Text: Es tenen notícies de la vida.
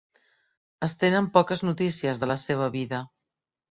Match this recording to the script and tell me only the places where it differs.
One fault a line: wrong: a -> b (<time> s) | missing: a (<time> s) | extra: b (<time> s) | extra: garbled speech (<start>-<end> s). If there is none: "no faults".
extra: poques (1.4 s)
extra: seva (2.4 s)